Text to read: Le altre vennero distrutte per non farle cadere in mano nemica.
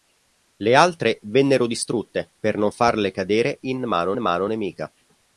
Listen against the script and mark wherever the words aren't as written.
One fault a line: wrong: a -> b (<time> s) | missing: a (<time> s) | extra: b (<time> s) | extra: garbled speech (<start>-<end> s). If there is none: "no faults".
extra: mano (4.2 s)